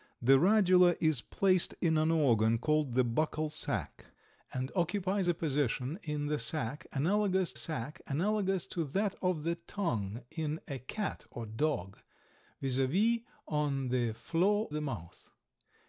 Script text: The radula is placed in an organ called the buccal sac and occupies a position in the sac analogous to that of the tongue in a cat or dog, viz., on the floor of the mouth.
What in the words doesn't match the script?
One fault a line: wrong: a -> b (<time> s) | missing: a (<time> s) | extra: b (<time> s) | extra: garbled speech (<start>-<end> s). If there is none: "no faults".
extra: sac analogous (7.5 s)
missing: of (14.7 s)